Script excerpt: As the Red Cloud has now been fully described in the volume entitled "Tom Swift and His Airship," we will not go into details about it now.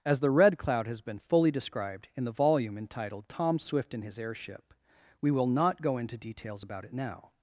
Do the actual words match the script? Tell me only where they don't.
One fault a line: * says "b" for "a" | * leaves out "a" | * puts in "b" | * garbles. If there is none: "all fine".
* leaves out "now"